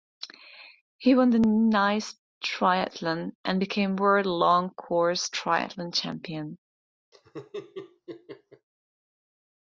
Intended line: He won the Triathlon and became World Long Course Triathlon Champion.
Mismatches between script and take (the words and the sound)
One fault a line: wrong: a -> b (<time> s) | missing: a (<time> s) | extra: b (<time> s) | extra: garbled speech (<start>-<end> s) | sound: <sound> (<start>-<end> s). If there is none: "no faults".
extra: Nice (1.4 s)
sound: laugh (7.1-8.7 s)